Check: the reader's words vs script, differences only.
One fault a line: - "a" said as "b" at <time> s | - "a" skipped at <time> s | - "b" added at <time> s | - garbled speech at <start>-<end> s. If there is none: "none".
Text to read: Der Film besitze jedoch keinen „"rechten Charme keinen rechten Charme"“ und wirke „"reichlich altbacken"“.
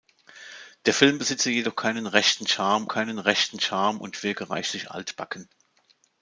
none